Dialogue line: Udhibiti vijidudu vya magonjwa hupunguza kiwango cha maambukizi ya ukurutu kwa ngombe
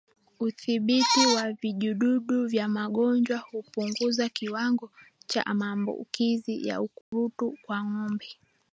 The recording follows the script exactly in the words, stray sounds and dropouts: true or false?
false